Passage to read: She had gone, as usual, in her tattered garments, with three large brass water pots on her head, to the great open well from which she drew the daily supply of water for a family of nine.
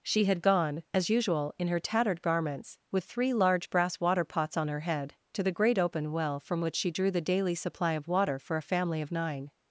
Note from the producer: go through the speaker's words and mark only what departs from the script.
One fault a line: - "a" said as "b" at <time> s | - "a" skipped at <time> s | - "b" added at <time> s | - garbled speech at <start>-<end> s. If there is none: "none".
none